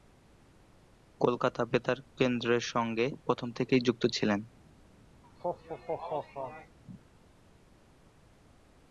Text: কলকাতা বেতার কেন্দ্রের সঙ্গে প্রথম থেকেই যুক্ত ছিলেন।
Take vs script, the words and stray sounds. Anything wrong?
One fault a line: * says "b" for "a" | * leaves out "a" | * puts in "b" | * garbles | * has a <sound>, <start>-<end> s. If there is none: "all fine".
* has a laugh, 5.2-6.8 s